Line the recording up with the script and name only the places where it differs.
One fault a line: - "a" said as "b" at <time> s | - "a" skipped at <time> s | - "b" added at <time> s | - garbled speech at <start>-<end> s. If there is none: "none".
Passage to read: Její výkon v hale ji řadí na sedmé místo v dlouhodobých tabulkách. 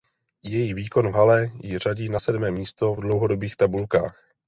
none